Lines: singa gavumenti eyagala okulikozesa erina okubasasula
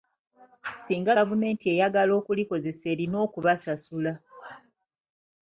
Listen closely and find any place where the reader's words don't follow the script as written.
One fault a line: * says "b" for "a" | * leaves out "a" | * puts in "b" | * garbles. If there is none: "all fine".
all fine